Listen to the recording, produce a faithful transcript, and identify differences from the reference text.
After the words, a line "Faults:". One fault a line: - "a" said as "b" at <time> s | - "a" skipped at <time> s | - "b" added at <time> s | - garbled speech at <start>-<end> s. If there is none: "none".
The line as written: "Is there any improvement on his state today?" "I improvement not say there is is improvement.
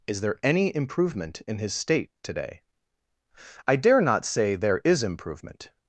"Is there any improvement in his state today?" "I dare not say there is improvement.
Faults:
- "on" said as "in" at 1.5 s
- "improvement" said as "dare" at 3.8 s
- "is" skipped at 5.0 s